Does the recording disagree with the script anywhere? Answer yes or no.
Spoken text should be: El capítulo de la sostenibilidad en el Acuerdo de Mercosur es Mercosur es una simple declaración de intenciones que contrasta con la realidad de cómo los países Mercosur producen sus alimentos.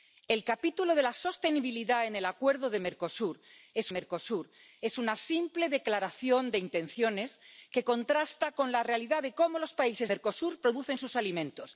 no